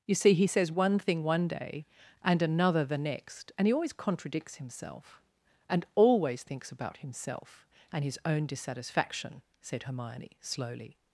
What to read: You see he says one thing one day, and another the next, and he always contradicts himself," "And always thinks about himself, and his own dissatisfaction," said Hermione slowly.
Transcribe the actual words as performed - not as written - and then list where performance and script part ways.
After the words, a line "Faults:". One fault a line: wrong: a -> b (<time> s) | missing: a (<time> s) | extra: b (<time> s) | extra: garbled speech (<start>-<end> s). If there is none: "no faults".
You see he says one thing one day, and another the next, and he always contradicts himself," "And always thinks about himself, and his own dissatisfaction," said Hermione slowly.
Faults:
no faults